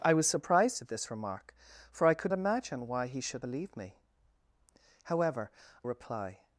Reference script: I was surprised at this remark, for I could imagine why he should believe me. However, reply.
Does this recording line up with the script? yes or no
yes